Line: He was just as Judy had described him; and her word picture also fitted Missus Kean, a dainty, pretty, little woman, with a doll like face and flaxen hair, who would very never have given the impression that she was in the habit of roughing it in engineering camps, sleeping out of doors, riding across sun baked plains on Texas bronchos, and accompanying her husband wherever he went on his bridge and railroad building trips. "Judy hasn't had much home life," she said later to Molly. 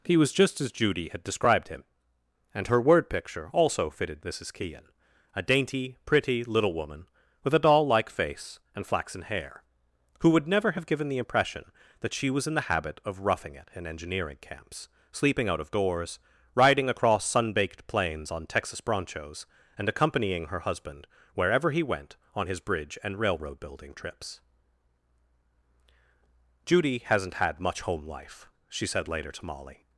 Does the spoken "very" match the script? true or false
false